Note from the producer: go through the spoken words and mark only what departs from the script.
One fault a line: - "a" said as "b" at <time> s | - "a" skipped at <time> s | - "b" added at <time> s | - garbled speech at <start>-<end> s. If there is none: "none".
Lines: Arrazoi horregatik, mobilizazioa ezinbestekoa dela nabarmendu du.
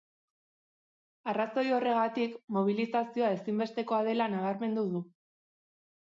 none